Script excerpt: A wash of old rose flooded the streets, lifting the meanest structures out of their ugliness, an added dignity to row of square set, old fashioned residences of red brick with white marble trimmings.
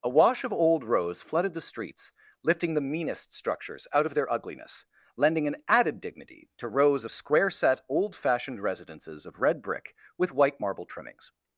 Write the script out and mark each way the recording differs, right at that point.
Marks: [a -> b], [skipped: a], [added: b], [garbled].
A wash of old rose flooded the streets, lifting the meanest structures out of their ugliness, [added: lending] an added dignity to [row -> rows] of square set, old fashioned residences of red brick with white marble trimmings.